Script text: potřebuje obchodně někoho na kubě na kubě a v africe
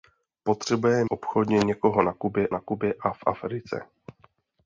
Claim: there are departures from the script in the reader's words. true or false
false